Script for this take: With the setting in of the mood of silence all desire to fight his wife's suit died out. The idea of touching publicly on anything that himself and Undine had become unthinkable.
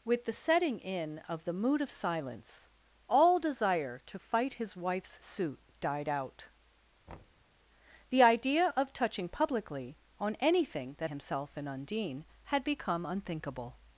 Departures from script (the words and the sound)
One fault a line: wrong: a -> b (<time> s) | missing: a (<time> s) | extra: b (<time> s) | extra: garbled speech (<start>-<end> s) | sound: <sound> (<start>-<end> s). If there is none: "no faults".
sound: thud (7.1-7.5 s)